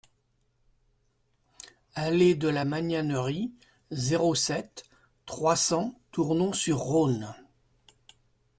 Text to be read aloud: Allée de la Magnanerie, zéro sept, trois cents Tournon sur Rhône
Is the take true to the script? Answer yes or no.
yes